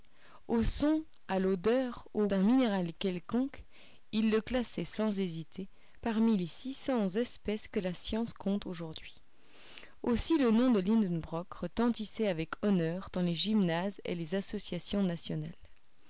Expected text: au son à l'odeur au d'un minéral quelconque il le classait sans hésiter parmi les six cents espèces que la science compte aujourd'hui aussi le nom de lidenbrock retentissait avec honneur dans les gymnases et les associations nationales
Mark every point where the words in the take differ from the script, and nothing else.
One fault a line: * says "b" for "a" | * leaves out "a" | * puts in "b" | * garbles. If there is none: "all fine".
all fine